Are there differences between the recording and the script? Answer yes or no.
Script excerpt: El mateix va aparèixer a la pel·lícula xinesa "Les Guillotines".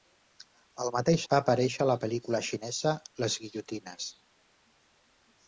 no